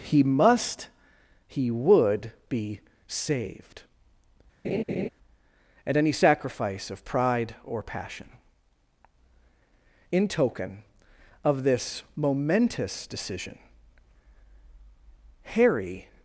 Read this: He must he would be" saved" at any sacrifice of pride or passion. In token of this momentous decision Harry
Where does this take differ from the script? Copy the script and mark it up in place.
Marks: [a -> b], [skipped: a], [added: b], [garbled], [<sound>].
He must he would be" saved" [laugh] at any sacrifice of pride or passion. In token of this momentous decision Harry